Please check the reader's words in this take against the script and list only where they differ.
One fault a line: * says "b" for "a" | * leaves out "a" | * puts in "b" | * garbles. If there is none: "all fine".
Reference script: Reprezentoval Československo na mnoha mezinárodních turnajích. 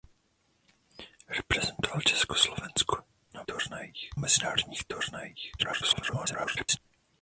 * says "turnajích" for "mnoha"
* garbles